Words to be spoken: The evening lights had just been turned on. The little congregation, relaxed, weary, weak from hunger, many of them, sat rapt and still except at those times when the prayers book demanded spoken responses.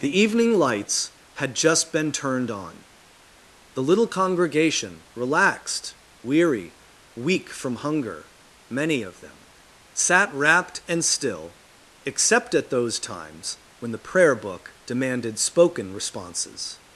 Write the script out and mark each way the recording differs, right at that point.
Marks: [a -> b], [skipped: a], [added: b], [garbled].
The evening lights had just been turned on. The little congregation, relaxed, weary, weak from hunger, many of them, sat rapt and still except at those times when the [prayers -> prayer] book demanded spoken responses.